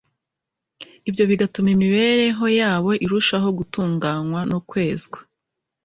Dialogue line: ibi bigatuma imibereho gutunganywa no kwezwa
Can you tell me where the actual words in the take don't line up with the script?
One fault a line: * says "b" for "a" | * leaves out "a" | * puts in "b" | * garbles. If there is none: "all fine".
* says "ibyo" for "ibi"
* puts in "yabo irushaho"